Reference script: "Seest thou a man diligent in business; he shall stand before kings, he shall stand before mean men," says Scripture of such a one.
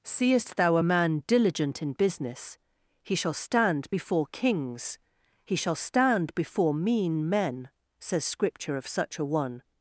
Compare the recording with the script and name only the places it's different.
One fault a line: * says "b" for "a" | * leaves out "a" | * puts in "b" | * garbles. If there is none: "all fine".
all fine